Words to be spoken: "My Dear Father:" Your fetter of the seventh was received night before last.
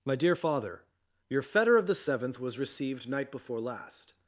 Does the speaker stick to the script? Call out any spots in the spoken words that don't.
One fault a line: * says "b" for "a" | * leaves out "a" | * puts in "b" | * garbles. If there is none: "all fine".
all fine